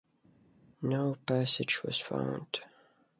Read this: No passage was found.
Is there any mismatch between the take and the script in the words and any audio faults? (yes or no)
no